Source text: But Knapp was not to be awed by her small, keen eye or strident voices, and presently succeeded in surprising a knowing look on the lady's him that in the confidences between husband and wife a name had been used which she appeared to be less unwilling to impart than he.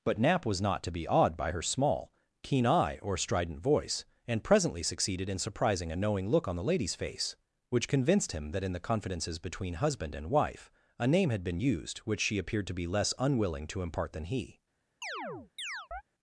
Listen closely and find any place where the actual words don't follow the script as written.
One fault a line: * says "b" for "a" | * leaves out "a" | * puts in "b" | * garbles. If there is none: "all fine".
* says "voice" for "voices"
* puts in "face which convinced"